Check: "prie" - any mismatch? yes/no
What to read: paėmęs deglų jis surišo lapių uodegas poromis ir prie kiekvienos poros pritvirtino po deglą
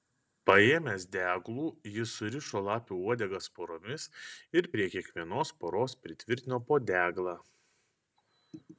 no